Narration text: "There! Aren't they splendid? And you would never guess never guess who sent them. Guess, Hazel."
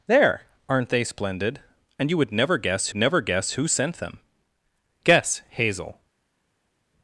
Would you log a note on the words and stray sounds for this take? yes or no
no